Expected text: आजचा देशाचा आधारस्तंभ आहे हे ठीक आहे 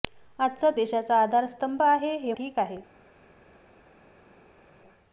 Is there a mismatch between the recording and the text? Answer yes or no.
no